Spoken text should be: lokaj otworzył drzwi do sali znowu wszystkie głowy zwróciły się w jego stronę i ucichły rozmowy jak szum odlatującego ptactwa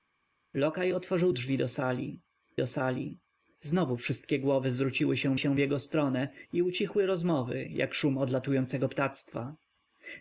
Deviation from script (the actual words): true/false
true